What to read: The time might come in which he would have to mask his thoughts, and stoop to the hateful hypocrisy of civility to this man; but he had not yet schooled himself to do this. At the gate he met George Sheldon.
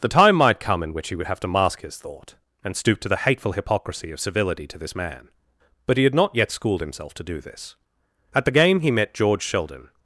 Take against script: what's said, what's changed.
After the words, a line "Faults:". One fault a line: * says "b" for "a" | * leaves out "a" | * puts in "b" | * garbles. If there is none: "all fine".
The time might come in which he would have to mask his thought, and stoop to the hateful hypocrisy of civility to this man; but he had not yet schooled himself to do this. At the game he met George Sheldon.
Faults:
* says "thought" for "thoughts"
* says "game" for "gate"